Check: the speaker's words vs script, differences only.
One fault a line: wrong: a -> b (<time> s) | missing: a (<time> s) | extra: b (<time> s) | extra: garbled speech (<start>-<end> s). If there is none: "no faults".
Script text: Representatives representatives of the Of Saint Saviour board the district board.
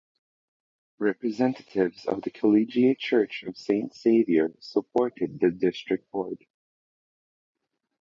missing: representatives (2.1 s)
extra: Collegiate Church (2.3 s)
wrong: board -> supported (4.6 s)